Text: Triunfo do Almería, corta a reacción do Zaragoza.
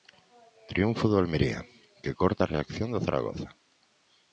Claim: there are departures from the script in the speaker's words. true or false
true